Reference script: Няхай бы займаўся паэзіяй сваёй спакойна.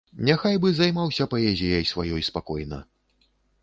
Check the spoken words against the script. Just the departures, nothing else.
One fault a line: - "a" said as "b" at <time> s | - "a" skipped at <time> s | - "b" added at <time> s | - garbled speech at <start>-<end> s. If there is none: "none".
none